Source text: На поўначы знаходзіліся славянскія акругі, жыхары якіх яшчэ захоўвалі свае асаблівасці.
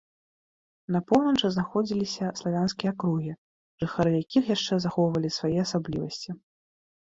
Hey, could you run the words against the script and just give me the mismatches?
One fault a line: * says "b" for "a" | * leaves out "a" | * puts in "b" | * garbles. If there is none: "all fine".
all fine